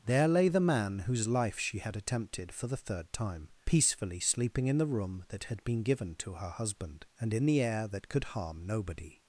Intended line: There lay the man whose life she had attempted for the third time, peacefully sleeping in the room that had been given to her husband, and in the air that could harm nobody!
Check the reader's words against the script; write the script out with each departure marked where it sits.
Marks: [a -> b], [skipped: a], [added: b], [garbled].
There lay the man whose life she had attempted for the third time, peacefully sleeping in the room that had been given to her husband, and in the air that could harm nobody!